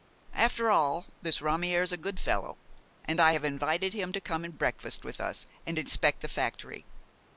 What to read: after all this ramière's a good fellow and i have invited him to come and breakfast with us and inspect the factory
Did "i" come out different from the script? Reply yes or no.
no